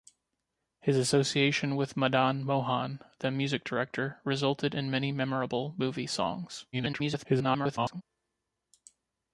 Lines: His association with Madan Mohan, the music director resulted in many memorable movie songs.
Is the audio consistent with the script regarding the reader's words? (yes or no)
no